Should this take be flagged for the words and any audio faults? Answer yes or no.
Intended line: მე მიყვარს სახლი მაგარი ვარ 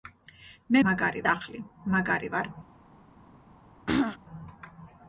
yes